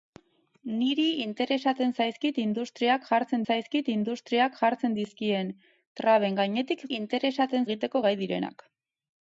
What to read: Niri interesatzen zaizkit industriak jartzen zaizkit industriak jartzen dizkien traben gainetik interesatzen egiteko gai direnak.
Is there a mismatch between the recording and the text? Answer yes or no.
no